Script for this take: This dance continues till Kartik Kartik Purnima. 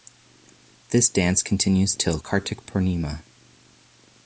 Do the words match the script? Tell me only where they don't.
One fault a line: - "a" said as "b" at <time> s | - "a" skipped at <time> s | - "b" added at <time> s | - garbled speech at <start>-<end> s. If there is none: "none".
- "Kartik" skipped at 2.7 s